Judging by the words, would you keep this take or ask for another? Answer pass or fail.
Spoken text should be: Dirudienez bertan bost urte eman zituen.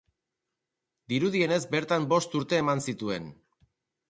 pass